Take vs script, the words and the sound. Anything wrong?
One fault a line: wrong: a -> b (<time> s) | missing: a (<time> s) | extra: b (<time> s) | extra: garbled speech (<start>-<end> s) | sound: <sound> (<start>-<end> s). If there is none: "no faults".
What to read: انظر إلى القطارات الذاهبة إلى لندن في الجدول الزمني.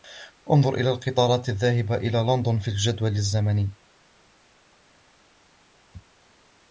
no faults